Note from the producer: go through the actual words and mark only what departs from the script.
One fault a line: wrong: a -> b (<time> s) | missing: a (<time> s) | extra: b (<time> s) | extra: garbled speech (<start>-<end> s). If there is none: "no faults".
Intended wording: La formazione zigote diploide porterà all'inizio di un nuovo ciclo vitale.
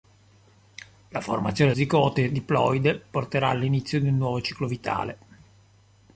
no faults